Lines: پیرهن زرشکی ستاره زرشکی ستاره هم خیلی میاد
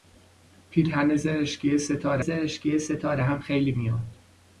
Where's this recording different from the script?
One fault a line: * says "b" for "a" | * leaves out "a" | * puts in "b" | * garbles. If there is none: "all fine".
all fine